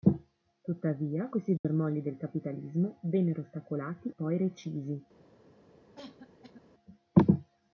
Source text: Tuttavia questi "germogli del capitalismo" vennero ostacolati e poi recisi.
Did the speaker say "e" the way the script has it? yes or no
no